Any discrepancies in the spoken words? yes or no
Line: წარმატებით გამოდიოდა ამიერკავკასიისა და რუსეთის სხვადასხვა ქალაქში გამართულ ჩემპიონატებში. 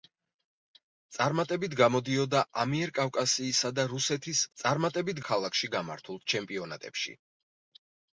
yes